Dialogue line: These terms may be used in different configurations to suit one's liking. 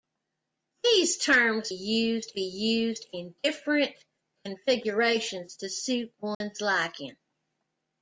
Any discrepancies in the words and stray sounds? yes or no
yes